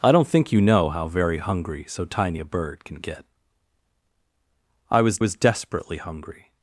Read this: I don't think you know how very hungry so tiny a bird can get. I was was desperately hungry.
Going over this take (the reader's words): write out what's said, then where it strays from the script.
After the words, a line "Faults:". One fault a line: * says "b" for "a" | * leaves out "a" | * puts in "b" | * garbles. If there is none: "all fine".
I don't think you know how very hungry so tiny a bird can get. I was was desperately hungry.
Faults:
all fine